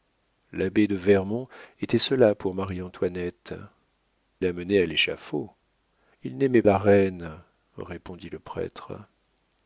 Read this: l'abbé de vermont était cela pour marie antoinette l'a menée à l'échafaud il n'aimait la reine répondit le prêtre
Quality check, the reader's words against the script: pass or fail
pass